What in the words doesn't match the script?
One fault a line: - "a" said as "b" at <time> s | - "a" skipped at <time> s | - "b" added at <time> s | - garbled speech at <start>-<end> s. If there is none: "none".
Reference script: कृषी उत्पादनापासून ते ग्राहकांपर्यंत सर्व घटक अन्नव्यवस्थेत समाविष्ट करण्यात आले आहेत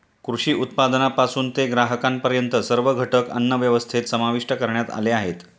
none